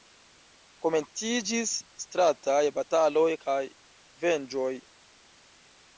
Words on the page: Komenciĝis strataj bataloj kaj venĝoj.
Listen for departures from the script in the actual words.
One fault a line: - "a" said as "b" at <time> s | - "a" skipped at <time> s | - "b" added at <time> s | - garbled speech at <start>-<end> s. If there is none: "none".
none